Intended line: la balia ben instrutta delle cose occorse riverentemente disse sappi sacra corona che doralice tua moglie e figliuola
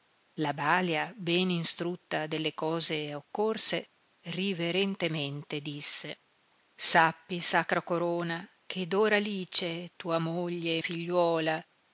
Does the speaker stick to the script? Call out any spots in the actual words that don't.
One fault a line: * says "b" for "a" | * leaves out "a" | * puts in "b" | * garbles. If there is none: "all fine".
all fine